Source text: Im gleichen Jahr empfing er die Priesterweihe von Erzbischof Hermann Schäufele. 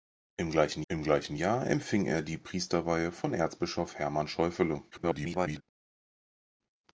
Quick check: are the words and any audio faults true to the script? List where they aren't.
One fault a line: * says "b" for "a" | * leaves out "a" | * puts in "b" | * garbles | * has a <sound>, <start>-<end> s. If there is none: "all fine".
* puts in "im gleichen"
* garbles